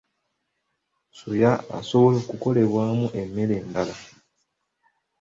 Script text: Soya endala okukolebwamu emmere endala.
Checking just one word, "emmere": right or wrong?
right